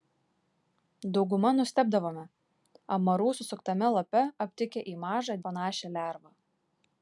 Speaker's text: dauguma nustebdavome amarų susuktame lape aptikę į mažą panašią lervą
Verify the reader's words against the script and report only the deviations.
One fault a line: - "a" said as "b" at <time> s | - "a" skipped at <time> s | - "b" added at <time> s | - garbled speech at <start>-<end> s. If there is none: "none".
none